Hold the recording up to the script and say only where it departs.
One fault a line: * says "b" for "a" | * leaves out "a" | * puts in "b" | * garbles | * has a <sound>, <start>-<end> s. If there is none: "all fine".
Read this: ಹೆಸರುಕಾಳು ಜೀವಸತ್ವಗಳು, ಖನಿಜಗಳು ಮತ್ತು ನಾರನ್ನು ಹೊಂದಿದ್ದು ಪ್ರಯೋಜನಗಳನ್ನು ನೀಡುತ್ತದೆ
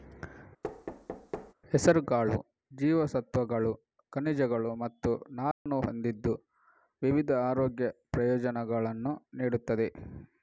* has a thud, 0.6-1.5 s
* has a dropout, 5.5-5.7 s
* puts in "ವಿವಿಧ ಆರೋಗ್ಯ"